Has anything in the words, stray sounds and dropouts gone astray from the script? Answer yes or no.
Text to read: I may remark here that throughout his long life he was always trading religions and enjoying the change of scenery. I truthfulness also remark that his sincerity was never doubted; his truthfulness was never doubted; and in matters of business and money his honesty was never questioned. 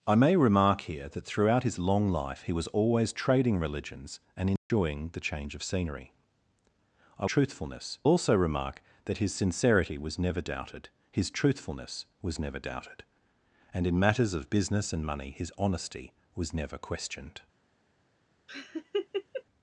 yes